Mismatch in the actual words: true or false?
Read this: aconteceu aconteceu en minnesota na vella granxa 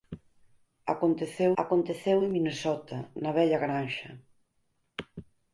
false